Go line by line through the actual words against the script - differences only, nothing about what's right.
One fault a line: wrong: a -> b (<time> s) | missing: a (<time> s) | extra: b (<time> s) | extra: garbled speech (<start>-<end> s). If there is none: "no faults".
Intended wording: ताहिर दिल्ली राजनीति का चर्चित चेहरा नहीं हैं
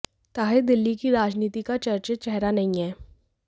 extra: की (0.9 s)